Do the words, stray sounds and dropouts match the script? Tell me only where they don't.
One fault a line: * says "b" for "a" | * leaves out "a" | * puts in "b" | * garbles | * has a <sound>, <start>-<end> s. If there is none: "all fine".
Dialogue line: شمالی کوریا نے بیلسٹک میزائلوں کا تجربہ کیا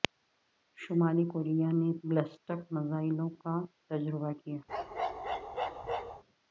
* has a bark, 4.7-6.2 s